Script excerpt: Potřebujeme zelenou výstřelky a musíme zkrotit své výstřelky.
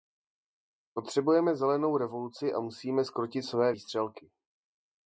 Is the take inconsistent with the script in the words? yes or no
yes